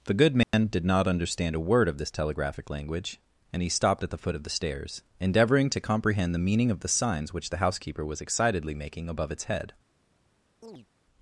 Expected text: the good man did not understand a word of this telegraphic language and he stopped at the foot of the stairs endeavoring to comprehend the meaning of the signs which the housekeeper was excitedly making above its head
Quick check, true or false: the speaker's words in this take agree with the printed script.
true